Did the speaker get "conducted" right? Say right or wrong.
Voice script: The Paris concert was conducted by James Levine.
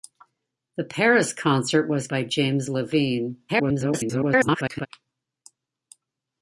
wrong